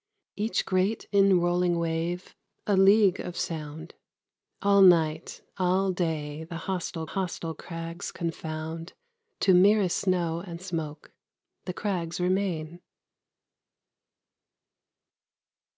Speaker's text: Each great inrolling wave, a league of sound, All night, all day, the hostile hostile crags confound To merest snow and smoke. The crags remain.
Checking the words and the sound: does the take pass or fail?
pass